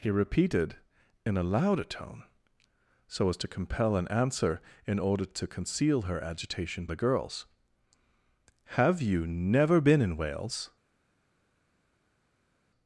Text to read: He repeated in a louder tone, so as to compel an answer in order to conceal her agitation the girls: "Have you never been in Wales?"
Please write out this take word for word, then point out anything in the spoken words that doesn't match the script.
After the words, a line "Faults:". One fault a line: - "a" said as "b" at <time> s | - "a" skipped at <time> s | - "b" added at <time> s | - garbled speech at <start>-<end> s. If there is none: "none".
He repeated in a louder tone, so as to compel an answer in order to conceal her agitation the girls: "Have you never been in Wales?"
Faults:
none